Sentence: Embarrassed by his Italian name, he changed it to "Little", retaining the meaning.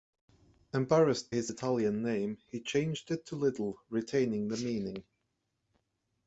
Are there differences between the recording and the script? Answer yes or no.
yes